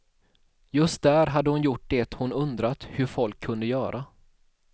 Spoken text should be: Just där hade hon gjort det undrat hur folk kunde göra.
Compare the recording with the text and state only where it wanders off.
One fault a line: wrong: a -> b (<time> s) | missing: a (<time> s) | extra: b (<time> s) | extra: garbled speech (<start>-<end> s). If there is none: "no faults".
extra: hon (2.1 s)